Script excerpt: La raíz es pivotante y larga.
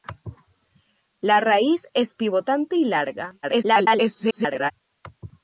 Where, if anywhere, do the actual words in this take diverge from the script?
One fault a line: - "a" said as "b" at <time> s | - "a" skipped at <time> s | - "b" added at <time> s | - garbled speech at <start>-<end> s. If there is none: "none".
- garbled speech at 3.4-4.7 s